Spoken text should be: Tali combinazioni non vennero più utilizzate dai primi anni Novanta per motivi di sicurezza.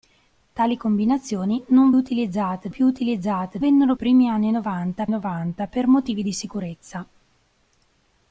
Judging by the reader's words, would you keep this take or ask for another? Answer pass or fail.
fail